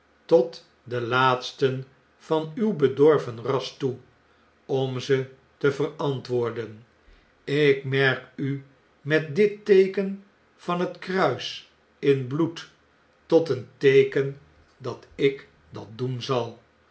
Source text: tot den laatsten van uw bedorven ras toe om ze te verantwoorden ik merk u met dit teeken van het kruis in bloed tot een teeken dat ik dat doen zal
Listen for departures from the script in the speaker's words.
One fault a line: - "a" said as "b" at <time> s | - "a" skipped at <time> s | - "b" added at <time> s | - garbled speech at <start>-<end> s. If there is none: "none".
none